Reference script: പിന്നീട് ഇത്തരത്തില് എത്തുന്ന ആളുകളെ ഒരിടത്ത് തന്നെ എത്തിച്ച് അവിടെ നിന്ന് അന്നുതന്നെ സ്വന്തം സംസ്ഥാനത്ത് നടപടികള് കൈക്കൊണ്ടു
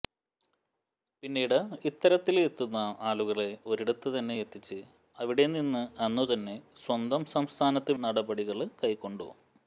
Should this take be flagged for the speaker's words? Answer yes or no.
no